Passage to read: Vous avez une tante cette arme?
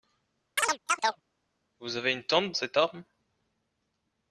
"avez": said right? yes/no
yes